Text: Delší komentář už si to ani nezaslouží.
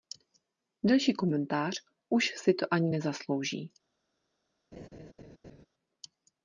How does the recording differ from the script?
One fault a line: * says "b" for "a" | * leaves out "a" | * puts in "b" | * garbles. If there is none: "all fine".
all fine